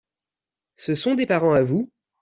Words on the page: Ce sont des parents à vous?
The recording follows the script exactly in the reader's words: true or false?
true